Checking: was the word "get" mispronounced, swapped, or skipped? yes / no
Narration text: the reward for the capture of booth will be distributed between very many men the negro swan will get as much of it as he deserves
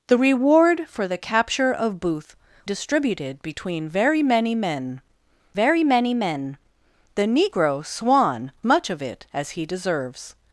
yes